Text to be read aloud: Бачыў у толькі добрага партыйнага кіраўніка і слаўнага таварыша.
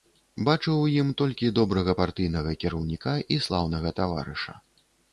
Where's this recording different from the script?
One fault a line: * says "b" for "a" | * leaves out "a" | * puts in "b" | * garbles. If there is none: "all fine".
* puts in "ім"